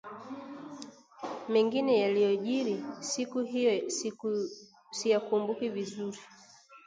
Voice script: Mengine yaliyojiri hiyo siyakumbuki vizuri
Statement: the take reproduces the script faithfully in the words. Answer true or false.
false